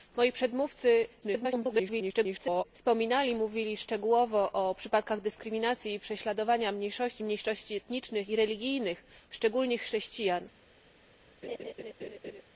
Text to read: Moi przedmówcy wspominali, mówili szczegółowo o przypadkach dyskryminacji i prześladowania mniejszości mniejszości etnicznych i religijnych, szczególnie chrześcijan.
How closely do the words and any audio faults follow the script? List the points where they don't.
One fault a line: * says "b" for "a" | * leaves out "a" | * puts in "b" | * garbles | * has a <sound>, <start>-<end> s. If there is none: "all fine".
* garbles
* has a laugh, 11.4-12.4 s